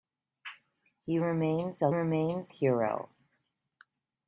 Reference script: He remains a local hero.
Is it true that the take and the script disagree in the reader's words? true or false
true